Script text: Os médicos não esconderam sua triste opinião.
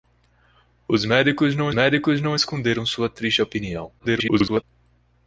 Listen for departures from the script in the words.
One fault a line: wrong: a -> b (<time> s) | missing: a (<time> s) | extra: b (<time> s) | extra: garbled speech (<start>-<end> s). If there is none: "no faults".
extra: médicos não (1.7 s)
extra: garbled speech (4.0-4.6 s)